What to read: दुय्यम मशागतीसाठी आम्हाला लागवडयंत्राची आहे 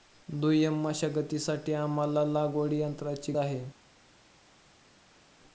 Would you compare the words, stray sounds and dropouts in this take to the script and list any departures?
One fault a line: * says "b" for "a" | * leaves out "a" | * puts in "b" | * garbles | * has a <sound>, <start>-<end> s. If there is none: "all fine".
all fine